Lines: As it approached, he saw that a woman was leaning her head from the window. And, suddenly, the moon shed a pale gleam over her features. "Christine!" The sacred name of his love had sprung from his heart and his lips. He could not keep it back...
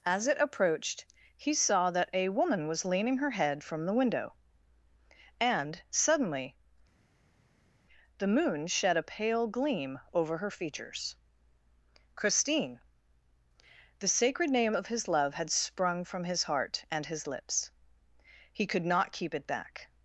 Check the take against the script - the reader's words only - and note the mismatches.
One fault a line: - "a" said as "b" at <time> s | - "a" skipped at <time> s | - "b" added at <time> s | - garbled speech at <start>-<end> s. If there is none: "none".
none